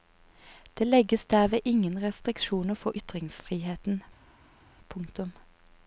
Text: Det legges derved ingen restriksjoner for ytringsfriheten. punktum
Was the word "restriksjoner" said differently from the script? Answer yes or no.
no